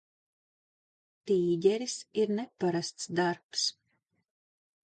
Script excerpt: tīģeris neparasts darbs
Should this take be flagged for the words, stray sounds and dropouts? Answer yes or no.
yes